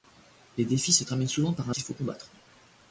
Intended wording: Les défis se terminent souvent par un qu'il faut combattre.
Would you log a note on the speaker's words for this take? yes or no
no